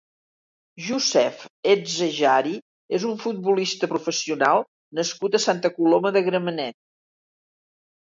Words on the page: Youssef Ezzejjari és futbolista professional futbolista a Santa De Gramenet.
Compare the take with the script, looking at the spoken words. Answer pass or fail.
fail